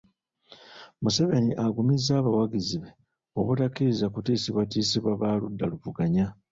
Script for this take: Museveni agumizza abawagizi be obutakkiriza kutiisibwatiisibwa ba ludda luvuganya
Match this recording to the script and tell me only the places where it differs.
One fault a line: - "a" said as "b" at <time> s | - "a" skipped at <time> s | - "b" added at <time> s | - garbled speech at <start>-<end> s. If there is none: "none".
none